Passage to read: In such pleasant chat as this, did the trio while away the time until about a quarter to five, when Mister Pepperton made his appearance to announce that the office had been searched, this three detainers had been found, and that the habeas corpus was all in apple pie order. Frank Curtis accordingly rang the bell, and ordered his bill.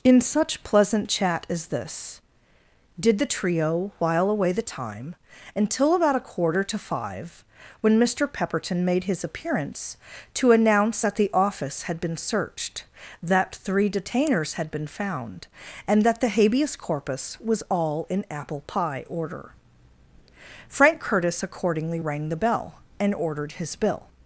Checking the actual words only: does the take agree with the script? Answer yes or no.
no